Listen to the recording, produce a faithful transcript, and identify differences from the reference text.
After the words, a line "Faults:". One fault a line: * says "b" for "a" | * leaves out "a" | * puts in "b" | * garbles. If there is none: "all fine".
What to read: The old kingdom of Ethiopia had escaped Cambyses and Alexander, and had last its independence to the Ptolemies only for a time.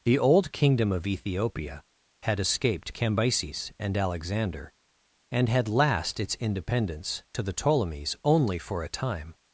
The old kingdom of Ethiopia had escaped Cambyses and Alexander, and had last its independence to the Ptolemies only for a time.
Faults:
all fine